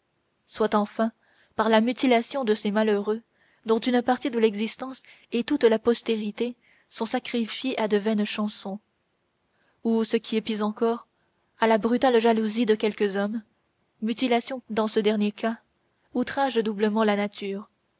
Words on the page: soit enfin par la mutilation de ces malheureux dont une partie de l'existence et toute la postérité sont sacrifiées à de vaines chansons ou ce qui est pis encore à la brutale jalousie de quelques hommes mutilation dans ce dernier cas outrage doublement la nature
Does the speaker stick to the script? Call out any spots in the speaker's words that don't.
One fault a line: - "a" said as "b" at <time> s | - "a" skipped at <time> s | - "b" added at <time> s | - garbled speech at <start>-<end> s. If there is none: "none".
none